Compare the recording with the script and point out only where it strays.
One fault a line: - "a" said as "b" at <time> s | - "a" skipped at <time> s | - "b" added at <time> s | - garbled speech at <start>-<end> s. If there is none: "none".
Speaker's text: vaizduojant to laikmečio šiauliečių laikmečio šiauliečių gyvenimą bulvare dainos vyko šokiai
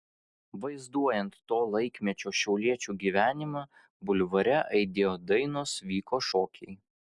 - "laikmečio šiauliečių" skipped at 3.0 s
- "aidėjo" added at 4.8 s